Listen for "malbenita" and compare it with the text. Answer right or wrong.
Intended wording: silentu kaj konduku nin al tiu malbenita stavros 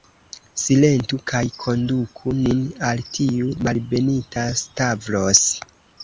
right